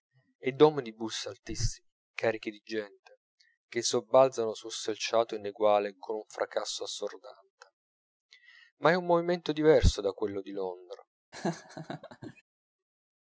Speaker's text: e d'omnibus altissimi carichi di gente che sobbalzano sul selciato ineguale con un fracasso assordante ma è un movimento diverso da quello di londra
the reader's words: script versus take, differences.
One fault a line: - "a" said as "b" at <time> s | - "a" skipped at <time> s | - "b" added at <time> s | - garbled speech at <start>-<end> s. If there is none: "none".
none